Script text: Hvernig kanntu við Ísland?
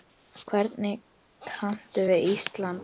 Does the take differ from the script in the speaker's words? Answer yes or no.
no